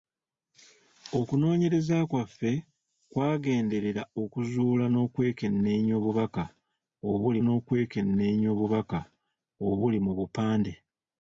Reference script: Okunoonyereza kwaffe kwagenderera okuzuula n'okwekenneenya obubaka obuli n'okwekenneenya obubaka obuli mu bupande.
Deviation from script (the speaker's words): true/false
false